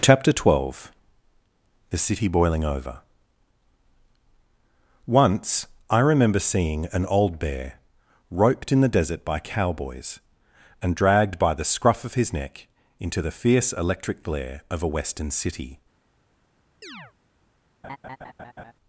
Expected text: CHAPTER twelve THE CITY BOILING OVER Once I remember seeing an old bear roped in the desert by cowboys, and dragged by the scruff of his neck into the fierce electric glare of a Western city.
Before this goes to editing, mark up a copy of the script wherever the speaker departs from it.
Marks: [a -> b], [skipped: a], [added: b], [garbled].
CHAPTER twelve THE CITY BOILING OVER Once I remember seeing an old bear roped in the desert by cowboys, and dragged by the scruff of his neck into the fierce electric glare of a Western city.